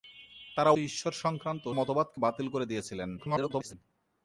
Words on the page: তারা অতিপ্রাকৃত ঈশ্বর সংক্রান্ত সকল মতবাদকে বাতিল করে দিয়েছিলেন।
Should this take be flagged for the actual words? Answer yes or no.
yes